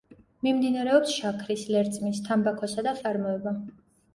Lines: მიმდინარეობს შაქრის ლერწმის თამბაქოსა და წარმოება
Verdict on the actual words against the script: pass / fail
pass